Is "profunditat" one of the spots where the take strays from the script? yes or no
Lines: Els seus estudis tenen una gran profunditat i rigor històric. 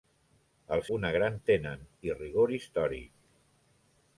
yes